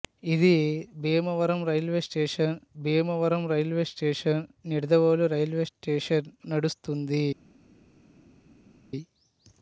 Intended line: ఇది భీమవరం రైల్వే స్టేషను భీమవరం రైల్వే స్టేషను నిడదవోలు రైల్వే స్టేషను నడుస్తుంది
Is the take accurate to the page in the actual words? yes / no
yes